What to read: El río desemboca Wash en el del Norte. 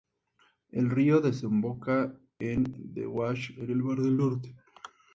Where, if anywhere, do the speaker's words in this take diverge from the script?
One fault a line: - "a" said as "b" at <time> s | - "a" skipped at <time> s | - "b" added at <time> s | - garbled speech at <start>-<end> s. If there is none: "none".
- "en The" added at 2.4 s
- "mar" added at 3.8 s